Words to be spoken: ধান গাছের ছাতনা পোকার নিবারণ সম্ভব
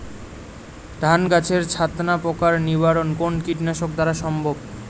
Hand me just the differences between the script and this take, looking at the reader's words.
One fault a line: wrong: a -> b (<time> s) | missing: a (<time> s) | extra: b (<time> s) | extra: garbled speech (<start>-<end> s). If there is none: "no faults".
extra: কোন কীটনাশক দ্বারা (3.2 s)